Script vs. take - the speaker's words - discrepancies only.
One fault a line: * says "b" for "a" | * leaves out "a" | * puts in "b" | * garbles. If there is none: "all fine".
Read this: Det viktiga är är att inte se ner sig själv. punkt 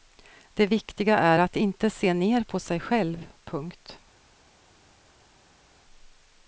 * leaves out "är"
* puts in "på"